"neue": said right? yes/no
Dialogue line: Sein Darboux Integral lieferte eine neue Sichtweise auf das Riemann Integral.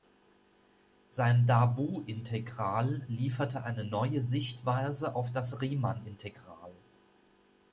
yes